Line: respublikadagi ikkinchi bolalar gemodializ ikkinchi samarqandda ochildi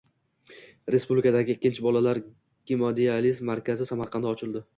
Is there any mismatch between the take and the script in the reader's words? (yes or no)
yes